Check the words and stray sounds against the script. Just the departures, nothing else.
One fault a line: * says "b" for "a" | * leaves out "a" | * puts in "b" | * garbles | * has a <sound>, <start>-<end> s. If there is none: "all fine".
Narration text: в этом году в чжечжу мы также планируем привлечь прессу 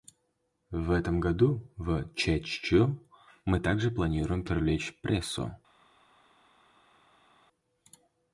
all fine